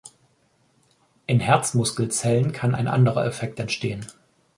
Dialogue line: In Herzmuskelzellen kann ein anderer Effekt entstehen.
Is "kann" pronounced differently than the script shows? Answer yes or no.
no